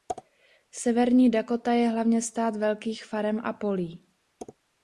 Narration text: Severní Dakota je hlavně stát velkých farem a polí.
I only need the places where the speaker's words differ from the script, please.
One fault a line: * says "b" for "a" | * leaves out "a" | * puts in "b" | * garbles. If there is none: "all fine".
all fine